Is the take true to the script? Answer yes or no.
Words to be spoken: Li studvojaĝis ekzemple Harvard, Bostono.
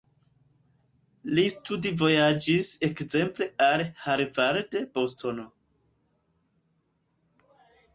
no